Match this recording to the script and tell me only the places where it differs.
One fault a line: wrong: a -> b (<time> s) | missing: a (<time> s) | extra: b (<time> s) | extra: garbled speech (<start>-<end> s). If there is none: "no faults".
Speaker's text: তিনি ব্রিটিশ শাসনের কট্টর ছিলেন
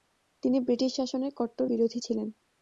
extra: বিরোধী (1.6 s)